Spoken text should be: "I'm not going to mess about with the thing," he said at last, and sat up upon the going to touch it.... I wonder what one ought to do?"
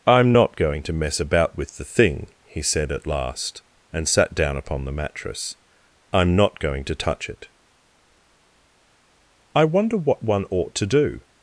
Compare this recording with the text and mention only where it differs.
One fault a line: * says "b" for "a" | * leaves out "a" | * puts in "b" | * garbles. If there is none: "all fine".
* says "down" for "up"
* puts in "mattress I'm not"